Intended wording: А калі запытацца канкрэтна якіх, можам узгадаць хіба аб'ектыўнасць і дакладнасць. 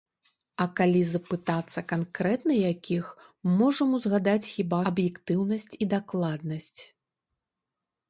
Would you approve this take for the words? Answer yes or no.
yes